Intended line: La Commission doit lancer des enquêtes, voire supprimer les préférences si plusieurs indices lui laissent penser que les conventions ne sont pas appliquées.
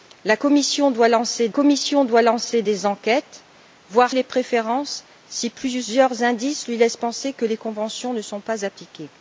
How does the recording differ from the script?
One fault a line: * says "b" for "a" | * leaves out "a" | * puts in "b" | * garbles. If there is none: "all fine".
* puts in "Commission doit lancer"
* leaves out "supprimer"